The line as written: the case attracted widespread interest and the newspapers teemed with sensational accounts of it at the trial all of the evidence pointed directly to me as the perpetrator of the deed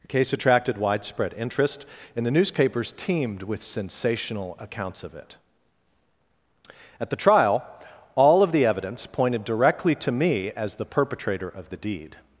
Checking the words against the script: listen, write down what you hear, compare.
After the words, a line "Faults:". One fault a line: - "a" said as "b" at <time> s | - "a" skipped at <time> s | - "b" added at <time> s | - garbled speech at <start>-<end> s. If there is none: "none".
the case attracted widespread interest and the newspapers teemed with sensational accounts of it at the trial all of the evidence pointed directly to me as the perpetrator of the deed
Faults:
none